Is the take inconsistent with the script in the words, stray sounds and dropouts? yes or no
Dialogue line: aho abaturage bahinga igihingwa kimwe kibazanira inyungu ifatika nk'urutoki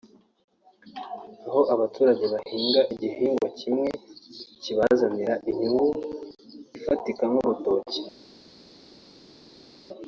no